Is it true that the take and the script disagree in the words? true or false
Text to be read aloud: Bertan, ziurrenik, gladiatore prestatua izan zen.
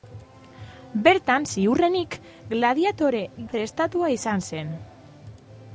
false